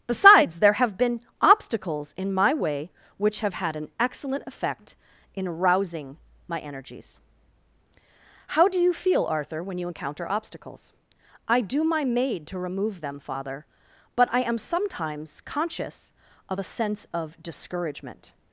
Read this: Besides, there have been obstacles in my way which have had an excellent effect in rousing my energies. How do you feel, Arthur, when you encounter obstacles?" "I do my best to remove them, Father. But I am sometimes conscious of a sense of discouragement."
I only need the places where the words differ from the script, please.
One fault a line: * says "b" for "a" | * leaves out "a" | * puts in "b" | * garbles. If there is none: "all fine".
* says "maid" for "best"